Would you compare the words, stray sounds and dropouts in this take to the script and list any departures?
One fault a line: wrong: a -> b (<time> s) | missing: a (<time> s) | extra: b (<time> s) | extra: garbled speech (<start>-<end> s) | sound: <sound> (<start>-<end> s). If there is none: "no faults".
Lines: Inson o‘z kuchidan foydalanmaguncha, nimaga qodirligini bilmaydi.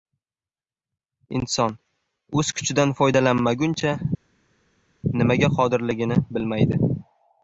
no faults